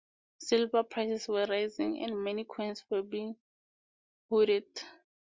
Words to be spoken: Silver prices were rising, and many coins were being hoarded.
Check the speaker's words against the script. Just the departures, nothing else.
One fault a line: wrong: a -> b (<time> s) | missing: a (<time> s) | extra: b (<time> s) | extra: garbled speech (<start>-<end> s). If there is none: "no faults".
no faults